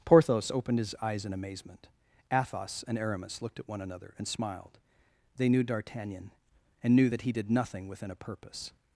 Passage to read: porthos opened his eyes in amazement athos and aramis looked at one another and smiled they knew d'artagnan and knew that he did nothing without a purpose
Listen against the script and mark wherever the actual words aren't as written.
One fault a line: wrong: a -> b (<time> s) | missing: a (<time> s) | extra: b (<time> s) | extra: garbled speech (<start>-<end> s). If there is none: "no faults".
wrong: without -> within (7.9 s)